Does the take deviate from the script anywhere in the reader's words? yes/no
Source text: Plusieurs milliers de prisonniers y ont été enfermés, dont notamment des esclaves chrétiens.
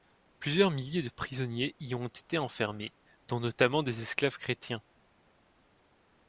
no